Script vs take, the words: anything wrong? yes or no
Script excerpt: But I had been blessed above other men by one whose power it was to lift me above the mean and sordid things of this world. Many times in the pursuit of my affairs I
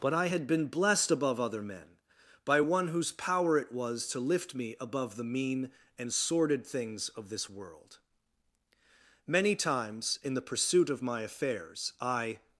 no